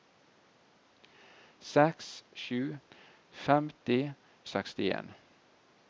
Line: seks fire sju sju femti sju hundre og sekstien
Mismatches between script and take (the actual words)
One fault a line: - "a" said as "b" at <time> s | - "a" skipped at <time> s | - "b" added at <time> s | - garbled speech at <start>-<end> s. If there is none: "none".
- "fire" skipped at 2.1 s
- "sju" skipped at 2.6 s
- "sju hundre" skipped at 4.0 s